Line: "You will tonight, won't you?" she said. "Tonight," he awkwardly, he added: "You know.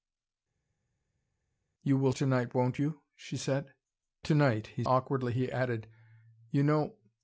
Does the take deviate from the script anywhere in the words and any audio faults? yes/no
no